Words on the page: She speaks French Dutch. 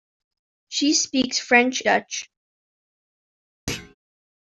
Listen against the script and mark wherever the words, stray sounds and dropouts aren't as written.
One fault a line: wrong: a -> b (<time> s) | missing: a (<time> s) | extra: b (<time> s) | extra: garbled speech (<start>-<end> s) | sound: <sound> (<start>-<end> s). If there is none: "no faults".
sound: thud (3.7-3.9 s)